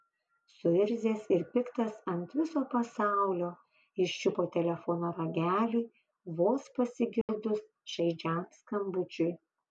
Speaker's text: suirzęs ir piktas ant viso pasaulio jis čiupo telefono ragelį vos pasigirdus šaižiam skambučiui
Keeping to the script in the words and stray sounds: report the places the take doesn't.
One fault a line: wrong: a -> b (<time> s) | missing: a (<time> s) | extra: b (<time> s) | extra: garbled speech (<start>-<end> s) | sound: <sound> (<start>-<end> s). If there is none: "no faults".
sound: dropout (7.2-7.3 s)